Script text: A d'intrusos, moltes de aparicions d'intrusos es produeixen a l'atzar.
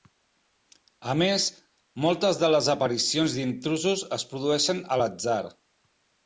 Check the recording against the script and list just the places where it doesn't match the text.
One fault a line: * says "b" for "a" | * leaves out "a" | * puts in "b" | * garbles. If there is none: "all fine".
* says "més" for "d'intrusos"
* puts in "les"